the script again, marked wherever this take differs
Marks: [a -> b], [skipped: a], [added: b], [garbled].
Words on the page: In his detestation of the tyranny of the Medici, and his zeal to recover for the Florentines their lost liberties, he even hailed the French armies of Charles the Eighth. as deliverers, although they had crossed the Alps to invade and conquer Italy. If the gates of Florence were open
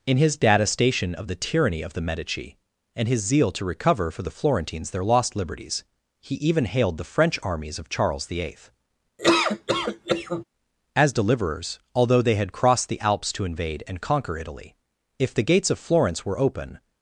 In his detestation of the tyranny of the Medici, and his zeal to recover for the Florentines their lost liberties, he even hailed the French armies of Charles the Eighth. as deliverers, although they had crossed the Alps to invade and conquer Italy. If the gates of Florence were open